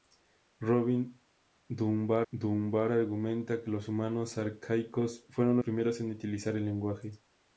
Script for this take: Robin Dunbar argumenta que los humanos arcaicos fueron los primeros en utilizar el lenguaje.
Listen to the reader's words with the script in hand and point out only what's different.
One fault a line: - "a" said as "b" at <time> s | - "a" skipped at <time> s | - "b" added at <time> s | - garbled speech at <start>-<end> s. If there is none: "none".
- "Dunbar" added at 2.3 s
- "los" skipped at 5.6 s